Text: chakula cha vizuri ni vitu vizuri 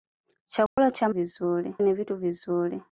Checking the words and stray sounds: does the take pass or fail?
fail